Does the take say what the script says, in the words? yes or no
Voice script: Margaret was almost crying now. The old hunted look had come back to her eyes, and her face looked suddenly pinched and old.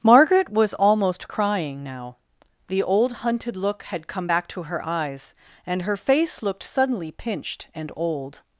yes